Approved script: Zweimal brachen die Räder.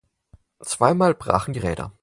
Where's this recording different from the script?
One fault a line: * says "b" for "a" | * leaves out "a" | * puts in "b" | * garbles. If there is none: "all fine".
all fine